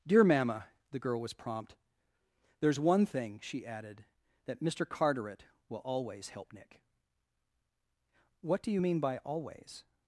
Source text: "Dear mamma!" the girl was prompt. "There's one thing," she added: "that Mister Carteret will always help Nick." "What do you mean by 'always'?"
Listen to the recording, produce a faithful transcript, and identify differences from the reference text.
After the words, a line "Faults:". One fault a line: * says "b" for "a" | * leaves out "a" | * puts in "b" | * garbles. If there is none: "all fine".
"Dear mamma!" the girl was prompt. "There's one thing," she added: "that Mister Carteret will always help Nick." "What do you mean by 'always'?"
Faults:
all fine